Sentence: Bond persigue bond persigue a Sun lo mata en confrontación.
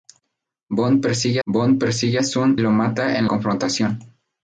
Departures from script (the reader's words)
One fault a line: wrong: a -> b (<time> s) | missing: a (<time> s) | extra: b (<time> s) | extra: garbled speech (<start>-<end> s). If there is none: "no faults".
no faults